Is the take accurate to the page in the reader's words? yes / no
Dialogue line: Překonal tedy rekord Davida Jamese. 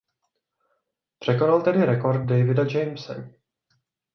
yes